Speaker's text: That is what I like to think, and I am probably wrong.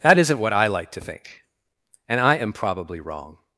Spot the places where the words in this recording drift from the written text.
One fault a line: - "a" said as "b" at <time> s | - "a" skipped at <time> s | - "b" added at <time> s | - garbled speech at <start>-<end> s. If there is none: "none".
- "is" said as "isn't" at 0.2 s